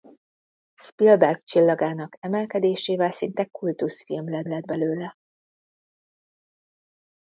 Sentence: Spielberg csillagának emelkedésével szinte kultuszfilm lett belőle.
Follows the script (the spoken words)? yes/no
no